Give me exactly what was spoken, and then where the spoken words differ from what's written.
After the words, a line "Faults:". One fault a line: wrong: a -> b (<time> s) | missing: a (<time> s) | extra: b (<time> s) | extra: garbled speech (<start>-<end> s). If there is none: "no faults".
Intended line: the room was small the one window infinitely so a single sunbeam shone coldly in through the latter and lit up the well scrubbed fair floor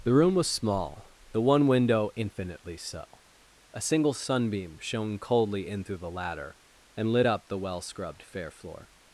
the room was small the one window infinitely so a single sunbeam shone coldly in through the latter and lit up the well scrubbed fair floor
Faults:
no faults